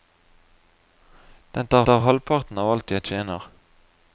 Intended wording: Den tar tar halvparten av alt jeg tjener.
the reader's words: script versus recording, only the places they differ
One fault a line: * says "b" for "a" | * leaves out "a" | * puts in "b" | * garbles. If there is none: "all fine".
all fine